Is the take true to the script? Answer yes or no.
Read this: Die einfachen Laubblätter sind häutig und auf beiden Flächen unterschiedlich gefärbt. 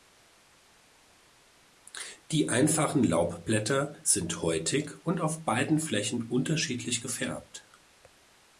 yes